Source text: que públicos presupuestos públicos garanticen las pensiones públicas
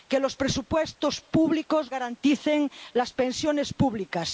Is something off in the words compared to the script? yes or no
yes